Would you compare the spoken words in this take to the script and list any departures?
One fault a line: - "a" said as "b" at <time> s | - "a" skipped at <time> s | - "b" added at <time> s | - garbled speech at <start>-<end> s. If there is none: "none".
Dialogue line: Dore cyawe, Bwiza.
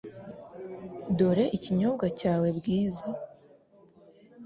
- "ikinyobwa" added at 1.6 s